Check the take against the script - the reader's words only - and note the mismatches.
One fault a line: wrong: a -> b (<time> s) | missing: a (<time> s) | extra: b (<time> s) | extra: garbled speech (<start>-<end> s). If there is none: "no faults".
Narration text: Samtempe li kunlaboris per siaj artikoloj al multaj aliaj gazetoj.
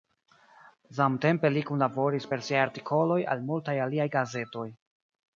no faults